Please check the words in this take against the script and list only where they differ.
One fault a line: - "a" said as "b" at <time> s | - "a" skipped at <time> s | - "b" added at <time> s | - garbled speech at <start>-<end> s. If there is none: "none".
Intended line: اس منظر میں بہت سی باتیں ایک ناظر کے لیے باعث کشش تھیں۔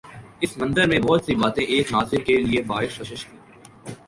none